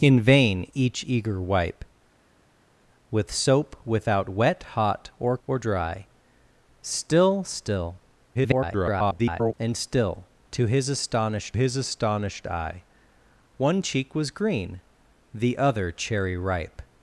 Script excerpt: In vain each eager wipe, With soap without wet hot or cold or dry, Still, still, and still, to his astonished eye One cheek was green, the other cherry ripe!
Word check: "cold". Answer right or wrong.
wrong